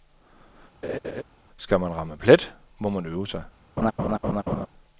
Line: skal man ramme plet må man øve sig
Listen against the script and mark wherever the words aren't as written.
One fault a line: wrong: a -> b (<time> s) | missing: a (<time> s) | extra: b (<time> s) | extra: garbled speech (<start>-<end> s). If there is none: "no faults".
no faults